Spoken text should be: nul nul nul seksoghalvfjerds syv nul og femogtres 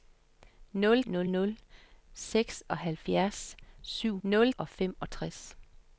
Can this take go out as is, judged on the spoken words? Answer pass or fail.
pass